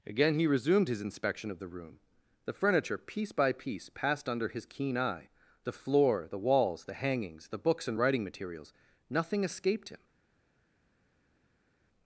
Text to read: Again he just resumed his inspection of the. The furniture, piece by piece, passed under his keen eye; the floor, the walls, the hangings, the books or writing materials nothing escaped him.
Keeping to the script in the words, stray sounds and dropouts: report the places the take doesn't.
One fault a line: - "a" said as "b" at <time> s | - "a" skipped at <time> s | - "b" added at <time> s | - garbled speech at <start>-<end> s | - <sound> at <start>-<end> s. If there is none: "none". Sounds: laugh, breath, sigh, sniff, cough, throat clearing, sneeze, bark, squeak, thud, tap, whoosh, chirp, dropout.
- "just" skipped at 0.5 s
- "room" added at 1.7 s
- "or" said as "and" at 7.9 s